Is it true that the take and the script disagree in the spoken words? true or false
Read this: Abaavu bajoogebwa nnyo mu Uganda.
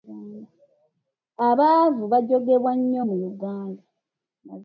false